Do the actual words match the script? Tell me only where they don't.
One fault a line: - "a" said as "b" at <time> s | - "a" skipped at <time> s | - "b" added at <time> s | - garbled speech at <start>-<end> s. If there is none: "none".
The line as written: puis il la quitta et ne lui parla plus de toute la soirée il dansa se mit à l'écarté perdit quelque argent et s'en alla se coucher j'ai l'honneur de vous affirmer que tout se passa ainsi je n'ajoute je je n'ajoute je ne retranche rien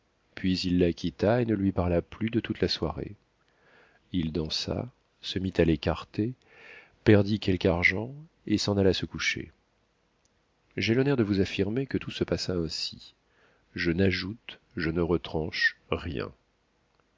- "je n'ajoute je" skipped at 14.9 s